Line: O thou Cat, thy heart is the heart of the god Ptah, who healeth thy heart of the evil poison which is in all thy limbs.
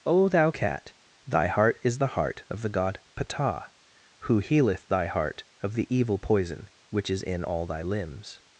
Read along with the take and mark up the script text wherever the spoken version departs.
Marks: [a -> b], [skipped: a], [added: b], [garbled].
O thou Cat, thy heart is the heart of the god Ptah, who healeth thy heart of the evil poison which is in all thy limbs.